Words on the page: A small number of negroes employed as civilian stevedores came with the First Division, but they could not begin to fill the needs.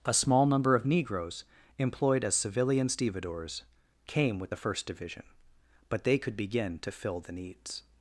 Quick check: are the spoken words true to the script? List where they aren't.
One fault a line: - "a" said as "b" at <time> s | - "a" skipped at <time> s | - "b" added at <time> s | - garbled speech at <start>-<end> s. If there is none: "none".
- "not" skipped at 6.4 s